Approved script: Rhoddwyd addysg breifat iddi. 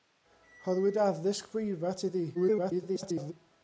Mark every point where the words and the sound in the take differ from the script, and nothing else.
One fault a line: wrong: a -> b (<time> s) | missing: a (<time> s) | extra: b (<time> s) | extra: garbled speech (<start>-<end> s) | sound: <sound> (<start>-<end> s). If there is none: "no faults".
extra: garbled speech (2.3-3.3 s)